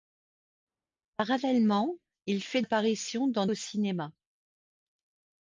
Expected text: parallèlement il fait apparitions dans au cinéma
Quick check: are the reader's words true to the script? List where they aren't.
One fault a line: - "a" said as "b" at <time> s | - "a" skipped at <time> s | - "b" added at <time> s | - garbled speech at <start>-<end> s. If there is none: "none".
none